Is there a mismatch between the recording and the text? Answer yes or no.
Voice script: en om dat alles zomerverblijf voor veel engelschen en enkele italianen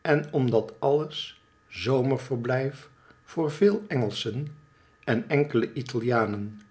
no